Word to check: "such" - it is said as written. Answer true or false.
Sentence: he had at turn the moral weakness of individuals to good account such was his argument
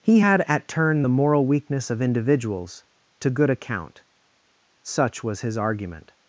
true